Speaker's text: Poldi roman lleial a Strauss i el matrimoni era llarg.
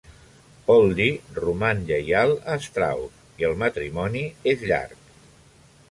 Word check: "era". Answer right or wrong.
wrong